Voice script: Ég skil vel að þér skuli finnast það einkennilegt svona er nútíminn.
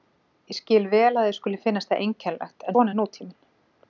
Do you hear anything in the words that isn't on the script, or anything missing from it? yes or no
no